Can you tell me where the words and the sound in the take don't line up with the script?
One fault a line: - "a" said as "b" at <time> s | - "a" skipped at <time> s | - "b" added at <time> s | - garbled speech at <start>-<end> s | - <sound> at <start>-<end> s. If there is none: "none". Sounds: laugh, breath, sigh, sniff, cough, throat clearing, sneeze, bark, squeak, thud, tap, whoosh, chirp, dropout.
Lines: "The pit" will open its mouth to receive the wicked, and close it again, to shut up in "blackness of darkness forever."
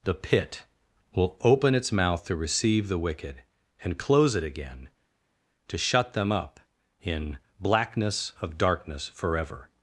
- "them" added at 6.1 s